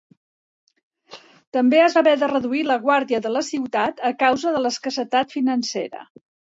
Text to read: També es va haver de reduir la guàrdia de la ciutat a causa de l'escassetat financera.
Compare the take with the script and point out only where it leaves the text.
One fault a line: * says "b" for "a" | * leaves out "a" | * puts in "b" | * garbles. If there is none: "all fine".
all fine